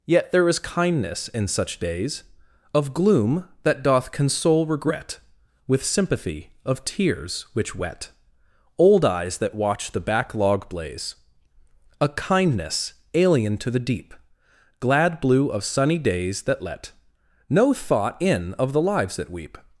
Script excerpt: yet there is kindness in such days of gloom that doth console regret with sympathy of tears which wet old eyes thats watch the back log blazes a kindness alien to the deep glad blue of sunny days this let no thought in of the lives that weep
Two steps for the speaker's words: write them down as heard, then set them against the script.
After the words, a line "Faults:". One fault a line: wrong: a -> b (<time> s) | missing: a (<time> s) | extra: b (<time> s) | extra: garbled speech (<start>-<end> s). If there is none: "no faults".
yet there is kindness in such days of gloom that doth console regret with sympathy of tears which wet old eyes that watch the back log blaze a kindness alien to the deep glad blue of sunny days that let no thought in of the lives that weep
Faults:
wrong: thats -> that (9.4 s)
wrong: blazes -> blaze (10.7 s)
wrong: this -> that (16.4 s)